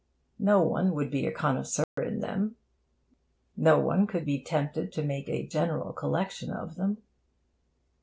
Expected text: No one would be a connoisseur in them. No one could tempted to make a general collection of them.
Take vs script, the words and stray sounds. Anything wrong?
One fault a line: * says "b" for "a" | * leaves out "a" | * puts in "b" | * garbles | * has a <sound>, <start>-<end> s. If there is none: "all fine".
* has a dropout, 1.8-2.0 s
* puts in "be"